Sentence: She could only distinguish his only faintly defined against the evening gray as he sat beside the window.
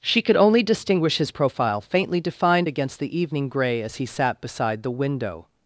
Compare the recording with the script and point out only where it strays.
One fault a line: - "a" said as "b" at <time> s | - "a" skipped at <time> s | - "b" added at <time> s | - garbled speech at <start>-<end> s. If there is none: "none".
- "only" said as "profile" at 1.3 s